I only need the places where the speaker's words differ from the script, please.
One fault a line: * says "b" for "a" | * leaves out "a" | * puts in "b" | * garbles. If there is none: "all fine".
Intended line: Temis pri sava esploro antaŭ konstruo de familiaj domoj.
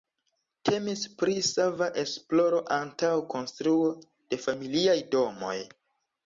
all fine